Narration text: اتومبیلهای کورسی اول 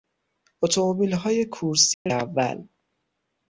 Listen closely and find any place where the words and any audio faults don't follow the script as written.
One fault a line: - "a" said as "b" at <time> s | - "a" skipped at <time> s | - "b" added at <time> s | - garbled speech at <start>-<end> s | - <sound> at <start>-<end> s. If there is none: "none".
- dropout at 1.9-2.1 s